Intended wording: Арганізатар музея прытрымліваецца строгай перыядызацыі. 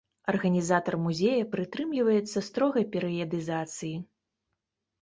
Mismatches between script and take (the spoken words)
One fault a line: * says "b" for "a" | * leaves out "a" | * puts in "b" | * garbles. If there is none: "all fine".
all fine